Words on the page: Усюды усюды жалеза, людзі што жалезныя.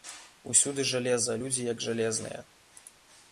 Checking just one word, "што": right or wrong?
wrong